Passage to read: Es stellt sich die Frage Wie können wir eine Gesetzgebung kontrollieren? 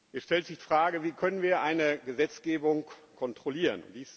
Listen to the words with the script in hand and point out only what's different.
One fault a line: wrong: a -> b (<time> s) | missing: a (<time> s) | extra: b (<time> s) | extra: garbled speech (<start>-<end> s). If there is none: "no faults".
missing: die (0.6 s)